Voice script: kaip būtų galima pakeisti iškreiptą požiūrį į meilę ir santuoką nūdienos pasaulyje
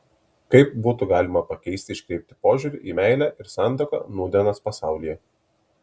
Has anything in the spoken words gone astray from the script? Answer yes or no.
no